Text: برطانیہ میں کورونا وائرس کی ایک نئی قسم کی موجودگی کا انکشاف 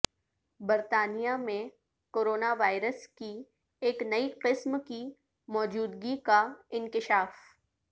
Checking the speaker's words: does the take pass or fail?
pass